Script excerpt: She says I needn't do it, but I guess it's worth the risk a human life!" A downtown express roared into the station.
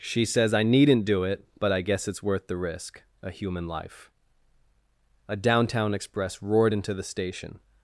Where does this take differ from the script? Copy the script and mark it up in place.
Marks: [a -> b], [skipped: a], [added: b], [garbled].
She says I needn't do it, but I guess it's worth the risk a human life!" A downtown express roared into the station.